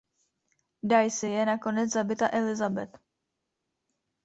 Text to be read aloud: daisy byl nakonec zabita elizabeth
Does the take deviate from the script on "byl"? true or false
true